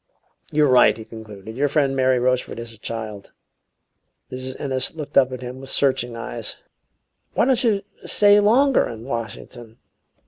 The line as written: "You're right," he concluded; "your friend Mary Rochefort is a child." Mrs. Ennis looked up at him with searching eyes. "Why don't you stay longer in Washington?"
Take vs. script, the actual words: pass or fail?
pass